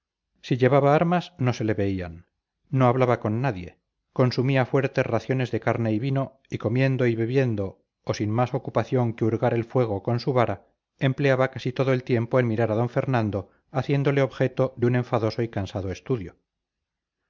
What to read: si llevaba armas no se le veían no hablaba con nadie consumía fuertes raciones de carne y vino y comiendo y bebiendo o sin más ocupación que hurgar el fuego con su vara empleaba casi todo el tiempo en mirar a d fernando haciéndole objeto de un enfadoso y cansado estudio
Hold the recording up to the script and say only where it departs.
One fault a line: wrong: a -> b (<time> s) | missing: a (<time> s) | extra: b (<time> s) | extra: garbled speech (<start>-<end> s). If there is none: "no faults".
no faults